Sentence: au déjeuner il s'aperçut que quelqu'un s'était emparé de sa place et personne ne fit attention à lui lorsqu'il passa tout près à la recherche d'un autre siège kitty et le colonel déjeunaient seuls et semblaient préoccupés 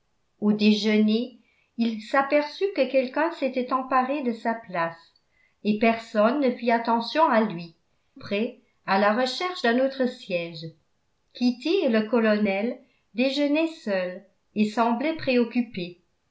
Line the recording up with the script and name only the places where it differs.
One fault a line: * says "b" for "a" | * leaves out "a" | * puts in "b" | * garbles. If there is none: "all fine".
* leaves out "lorsqu'il passa tout"